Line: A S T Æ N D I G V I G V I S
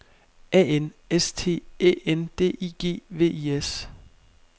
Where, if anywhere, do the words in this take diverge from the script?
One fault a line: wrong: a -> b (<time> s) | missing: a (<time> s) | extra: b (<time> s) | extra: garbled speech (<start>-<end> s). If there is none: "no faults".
extra: N (0.8 s)
missing: G V I (3.6 s)